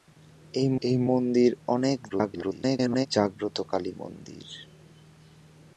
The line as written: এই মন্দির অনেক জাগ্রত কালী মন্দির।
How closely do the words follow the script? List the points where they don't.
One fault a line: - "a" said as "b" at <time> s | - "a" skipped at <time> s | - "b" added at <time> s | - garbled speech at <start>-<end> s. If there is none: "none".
- "এই" added at 0.8 s
- garbled speech at 2.1-3.1 s